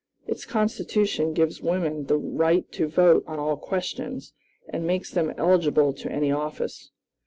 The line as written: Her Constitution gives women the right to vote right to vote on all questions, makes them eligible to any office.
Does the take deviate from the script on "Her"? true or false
true